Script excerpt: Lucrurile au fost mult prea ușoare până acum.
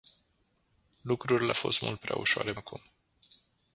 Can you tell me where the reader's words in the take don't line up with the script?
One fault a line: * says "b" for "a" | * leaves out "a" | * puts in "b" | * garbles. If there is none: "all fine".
* leaves out "au"
* leaves out "până"